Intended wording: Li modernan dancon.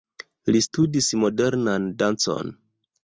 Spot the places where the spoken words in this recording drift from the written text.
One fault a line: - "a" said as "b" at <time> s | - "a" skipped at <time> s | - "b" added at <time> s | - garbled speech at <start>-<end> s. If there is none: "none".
- "studis" added at 0.7 s